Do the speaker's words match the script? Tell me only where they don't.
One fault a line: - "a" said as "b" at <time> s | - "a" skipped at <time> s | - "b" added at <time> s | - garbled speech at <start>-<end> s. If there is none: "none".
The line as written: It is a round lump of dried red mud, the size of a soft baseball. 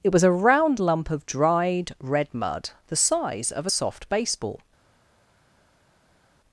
- "is" said as "was" at 0.1 s